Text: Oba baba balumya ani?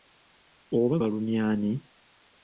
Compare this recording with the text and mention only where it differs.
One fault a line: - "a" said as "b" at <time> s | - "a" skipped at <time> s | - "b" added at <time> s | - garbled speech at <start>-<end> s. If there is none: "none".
- "baba" skipped at 0.9 s